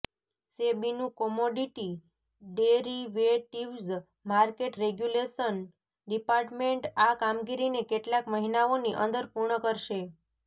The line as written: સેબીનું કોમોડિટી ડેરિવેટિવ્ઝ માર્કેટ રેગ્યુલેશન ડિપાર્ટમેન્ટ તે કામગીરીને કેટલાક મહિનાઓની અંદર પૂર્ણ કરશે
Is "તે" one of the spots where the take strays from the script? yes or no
yes